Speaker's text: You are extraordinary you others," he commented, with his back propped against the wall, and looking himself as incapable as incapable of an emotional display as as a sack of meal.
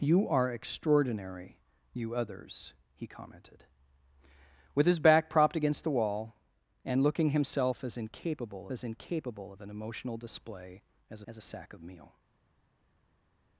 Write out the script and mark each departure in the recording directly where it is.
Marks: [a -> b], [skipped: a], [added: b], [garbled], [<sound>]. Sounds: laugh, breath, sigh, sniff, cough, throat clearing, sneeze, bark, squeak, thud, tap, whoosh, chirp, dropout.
You are extraordinary you others," he commented, with his back propped against the wall, and looking himself as incapable as incapable of an emotional display as as a sack of meal.